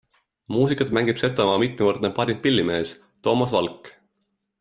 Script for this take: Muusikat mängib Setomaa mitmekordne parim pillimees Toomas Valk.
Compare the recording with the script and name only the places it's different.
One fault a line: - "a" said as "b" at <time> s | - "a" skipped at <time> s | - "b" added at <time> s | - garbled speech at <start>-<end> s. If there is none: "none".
none